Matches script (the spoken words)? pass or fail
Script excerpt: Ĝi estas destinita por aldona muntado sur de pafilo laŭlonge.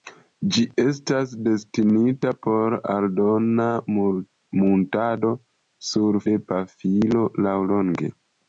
pass